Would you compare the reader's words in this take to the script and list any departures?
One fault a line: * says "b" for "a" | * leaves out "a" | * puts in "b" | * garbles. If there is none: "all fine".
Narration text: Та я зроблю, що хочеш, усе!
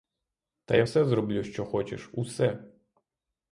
* puts in "все"